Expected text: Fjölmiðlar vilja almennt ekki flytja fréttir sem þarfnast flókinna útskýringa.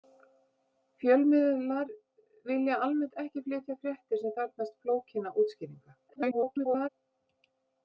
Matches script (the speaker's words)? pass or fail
fail